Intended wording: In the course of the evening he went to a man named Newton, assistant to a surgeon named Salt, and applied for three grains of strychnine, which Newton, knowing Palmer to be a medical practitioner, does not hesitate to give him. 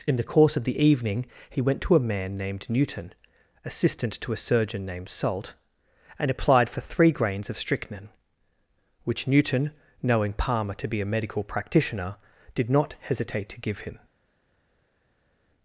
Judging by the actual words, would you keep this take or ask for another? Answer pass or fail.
fail